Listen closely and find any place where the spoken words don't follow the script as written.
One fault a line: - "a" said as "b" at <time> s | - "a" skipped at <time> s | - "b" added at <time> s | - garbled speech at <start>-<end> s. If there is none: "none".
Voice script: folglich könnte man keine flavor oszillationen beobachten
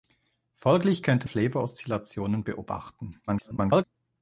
- "man keine" skipped at 1.3 s
- garbled speech at 3.3-3.8 s